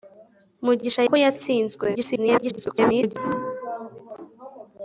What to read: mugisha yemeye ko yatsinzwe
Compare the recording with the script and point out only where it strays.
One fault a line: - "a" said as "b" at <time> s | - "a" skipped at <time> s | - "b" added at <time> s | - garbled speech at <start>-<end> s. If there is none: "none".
- "yemeye" skipped at 1.0 s
- garbled speech at 1.9-3.2 s